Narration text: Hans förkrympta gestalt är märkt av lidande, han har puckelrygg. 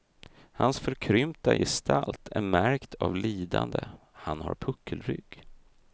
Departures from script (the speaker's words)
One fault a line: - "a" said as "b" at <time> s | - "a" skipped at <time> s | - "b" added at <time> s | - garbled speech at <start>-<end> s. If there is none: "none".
none